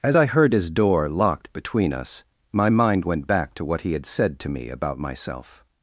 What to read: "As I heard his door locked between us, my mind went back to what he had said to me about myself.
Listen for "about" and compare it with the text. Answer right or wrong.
right